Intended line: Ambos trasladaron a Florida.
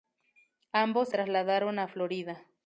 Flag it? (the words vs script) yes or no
no